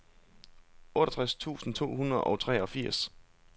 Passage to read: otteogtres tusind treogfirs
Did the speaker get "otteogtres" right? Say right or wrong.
right